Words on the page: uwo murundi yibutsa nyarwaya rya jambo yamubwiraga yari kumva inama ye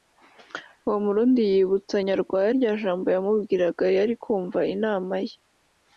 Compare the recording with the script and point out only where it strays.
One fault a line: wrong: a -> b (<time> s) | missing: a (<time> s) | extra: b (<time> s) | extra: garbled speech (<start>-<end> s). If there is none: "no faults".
no faults